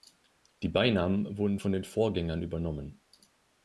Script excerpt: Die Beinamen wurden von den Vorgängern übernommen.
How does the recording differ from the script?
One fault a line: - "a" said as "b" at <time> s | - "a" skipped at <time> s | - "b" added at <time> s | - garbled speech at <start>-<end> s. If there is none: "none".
none